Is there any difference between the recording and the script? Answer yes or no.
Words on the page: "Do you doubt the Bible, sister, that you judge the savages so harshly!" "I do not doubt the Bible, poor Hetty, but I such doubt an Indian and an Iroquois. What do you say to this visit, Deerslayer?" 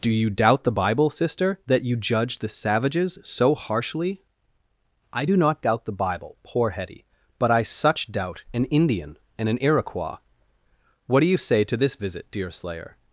no